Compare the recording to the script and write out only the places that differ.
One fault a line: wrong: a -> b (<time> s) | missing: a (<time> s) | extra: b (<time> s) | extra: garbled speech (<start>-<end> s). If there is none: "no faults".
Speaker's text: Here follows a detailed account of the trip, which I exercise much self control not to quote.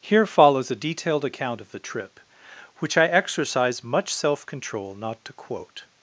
no faults